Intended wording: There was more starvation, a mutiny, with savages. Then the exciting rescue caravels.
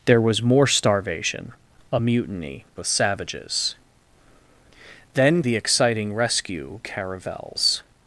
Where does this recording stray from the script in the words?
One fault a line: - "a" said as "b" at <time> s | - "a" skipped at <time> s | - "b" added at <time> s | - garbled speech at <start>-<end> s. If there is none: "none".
none